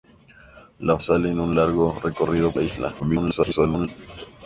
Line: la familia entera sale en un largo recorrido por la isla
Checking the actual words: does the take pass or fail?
fail